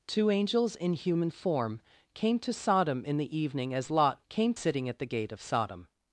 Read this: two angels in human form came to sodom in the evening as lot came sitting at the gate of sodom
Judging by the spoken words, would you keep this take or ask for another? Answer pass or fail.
pass